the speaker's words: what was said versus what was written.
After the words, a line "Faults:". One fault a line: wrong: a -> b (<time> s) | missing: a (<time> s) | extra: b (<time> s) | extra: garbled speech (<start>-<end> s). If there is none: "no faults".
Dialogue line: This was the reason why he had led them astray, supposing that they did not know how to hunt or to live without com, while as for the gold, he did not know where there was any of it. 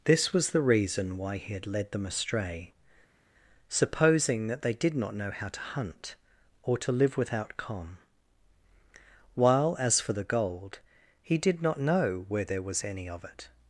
This was the reason why he had led them astray, supposing that they did not know how to hunt or to live without com, while as for the gold, he did not know where there was any of it.
Faults:
no faults